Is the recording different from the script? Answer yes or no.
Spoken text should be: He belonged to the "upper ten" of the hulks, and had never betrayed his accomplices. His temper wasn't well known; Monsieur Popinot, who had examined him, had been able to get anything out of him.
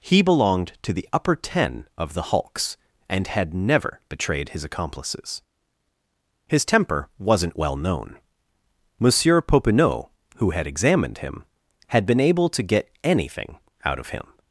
no